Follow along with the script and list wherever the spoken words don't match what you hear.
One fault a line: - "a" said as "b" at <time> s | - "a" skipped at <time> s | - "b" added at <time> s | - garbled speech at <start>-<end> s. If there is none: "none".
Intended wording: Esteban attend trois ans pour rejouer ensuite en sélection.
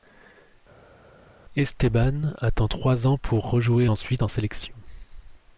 none